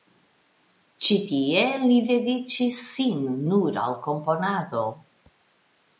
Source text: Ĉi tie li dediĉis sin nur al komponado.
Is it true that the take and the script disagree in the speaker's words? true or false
false